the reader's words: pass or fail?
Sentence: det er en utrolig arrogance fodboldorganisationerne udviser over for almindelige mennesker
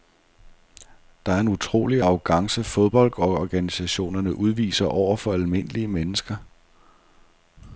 pass